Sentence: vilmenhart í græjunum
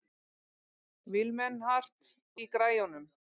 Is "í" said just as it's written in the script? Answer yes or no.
yes